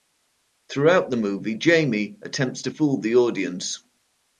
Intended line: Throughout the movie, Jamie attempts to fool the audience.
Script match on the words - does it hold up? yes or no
yes